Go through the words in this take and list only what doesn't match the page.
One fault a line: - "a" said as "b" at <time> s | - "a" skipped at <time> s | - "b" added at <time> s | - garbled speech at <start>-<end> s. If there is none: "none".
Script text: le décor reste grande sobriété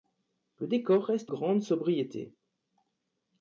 none